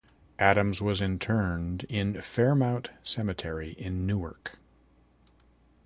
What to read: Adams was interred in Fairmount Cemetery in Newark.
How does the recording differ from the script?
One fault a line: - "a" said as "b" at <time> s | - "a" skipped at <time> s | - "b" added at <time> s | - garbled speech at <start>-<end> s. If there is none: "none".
none